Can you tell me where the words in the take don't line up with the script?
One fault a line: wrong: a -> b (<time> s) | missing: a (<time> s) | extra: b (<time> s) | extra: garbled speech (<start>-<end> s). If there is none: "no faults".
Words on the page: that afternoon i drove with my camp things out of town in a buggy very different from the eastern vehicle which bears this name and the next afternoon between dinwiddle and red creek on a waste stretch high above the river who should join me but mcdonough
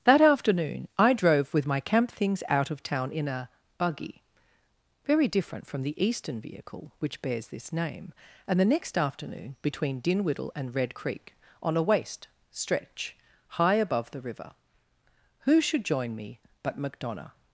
no faults